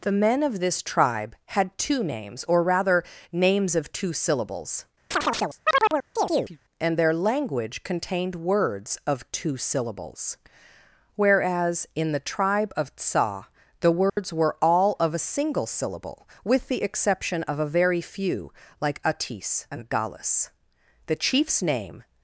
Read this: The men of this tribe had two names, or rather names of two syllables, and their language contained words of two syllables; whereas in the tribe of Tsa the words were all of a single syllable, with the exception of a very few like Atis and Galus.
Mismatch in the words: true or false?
true